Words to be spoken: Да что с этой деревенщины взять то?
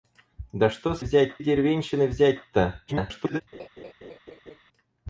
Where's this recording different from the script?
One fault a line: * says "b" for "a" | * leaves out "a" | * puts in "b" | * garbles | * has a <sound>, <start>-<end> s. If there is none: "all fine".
* says "взять" for "этой"
* garbles
* has a laugh, 3.5-4.6 s